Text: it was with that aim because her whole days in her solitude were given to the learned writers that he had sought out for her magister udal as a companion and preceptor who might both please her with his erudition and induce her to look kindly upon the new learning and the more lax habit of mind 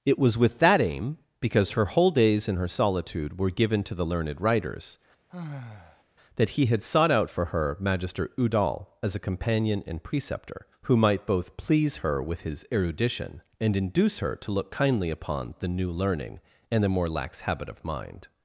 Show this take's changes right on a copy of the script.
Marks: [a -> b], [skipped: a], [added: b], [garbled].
it was with that aim because her whole days in her solitude were given to the learned writers that he had sought out for her magister udal as a companion and preceptor who might both please her with his erudition and induce her to look kindly upon the new learning and the more lax habit of mind